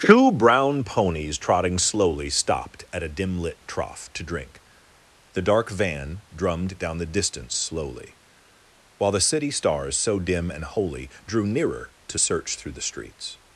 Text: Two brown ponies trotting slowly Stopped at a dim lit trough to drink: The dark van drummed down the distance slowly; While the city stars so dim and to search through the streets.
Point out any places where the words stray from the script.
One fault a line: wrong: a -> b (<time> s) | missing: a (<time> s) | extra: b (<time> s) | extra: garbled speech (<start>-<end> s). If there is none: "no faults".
extra: holy Drew nearer (10.6 s)